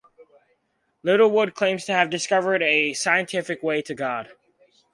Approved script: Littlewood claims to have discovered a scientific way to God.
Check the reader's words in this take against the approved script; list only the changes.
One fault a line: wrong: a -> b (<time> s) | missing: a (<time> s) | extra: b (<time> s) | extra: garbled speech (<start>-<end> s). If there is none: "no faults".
no faults